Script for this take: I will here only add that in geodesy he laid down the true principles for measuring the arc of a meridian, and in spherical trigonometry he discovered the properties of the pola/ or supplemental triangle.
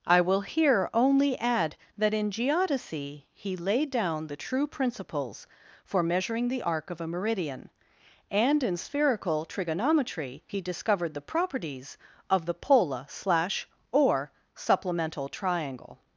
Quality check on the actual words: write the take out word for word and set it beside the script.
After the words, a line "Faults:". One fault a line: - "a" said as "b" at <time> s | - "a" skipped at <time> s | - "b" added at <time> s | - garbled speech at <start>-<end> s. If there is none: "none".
I will here only add that in geodesy he laid down the true principles for measuring the arc of a meridian, and in spherical trigonometry he discovered the properties of the pola/ slash or supplemental triangle.
Faults:
- "slash" added at 13.1 s